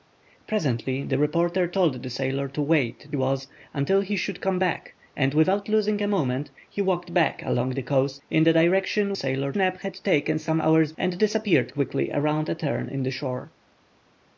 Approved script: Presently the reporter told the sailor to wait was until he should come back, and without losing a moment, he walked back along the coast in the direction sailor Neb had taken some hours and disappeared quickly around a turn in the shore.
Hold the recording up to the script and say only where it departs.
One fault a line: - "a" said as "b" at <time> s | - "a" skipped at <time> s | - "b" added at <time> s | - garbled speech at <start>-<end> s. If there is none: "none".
none